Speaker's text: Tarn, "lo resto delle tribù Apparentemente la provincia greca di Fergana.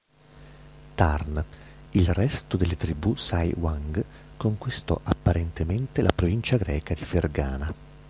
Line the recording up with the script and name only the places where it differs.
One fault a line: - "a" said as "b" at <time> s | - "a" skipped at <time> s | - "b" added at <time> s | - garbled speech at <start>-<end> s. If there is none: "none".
- "lo" said as "il" at 1.9 s
- "Sai Wang conquistò" added at 3.2 s